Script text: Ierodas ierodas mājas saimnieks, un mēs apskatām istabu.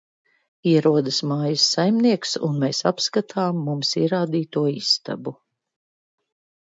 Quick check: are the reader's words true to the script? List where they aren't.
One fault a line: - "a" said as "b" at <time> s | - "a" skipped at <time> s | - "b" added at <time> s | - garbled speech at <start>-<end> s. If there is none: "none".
- "ierodas" skipped at 1.2 s
- "mums ierādīto" added at 3.7 s